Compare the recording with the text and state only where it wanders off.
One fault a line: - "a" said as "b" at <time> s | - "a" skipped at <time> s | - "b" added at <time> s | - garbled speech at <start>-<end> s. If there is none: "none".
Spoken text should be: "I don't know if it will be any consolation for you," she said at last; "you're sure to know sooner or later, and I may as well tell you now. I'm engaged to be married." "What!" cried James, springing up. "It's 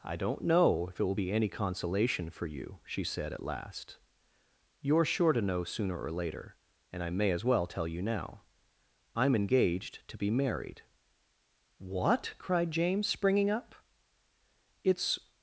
none